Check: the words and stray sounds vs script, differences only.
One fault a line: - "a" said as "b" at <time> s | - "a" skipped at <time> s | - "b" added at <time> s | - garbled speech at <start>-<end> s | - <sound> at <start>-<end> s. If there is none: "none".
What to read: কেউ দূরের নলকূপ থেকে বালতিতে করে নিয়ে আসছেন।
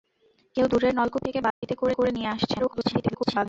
- dropout at 1.5-1.6 s
- "করে" added at 1.9 s
- garbled speech at 2.6-3.5 s